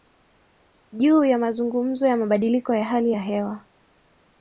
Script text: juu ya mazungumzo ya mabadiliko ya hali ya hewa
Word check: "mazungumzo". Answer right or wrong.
right